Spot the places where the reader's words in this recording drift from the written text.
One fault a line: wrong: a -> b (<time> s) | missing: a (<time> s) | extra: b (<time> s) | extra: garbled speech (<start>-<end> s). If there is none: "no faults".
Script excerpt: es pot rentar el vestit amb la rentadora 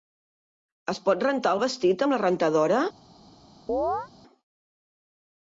no faults